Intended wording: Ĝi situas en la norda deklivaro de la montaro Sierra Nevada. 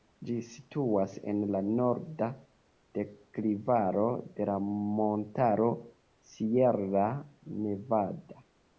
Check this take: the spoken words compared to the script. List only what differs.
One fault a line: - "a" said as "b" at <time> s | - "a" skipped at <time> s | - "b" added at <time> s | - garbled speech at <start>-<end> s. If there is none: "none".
none